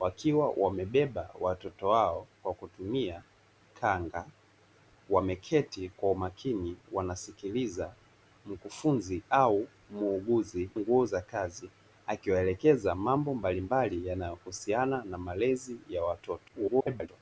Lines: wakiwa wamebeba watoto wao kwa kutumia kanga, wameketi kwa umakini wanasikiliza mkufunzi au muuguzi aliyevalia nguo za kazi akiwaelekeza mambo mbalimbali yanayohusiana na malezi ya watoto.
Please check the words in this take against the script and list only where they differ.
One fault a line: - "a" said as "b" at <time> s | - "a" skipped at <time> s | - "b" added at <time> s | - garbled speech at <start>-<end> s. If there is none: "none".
- "aliyevalia" skipped at 10.7 s
- garbled speech at 16.5-17.1 s